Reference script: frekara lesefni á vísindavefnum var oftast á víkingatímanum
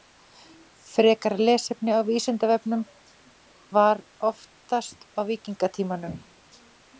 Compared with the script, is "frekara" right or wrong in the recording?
right